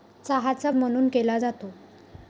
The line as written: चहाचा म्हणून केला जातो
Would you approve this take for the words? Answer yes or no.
yes